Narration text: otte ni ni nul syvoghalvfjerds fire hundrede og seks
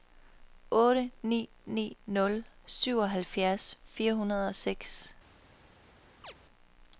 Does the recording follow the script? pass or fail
pass